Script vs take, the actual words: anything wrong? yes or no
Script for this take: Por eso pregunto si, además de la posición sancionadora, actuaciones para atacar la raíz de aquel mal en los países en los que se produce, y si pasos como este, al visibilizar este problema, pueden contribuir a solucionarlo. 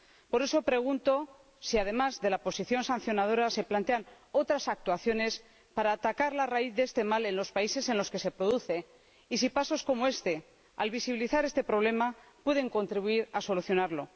yes